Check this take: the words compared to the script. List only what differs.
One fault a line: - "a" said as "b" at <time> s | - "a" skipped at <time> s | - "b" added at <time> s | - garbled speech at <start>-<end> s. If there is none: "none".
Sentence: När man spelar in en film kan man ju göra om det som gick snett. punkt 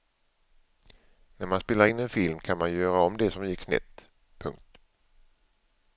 none